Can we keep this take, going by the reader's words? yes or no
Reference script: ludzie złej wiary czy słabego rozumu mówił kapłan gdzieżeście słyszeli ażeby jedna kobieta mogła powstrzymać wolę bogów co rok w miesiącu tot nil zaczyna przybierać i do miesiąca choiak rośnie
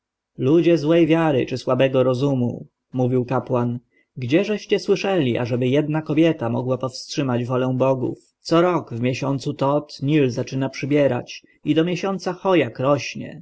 yes